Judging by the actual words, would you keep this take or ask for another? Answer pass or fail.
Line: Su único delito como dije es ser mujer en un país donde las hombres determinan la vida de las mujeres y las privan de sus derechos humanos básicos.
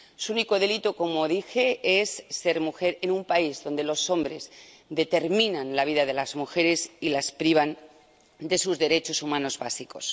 fail